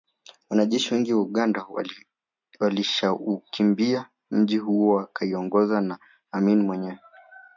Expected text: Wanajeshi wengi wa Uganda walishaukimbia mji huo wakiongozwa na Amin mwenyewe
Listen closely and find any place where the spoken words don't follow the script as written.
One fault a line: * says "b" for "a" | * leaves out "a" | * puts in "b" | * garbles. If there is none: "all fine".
all fine